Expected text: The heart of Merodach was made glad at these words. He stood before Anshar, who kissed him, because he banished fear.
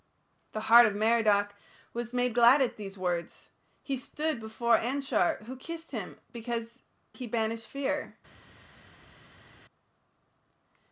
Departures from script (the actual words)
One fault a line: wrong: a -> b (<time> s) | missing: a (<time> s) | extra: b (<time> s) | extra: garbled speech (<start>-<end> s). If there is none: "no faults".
no faults